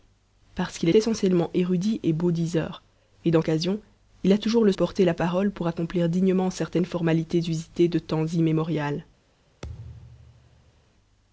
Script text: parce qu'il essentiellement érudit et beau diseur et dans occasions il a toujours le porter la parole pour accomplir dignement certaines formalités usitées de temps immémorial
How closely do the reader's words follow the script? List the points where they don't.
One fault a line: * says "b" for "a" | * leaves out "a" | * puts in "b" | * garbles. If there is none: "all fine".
all fine